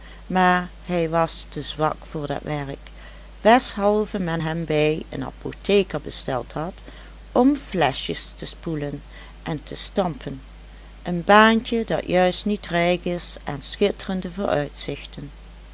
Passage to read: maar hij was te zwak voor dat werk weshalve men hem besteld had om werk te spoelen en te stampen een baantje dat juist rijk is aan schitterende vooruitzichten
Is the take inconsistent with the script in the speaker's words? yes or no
yes